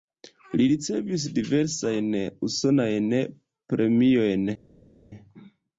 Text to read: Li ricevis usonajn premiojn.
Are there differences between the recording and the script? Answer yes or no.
yes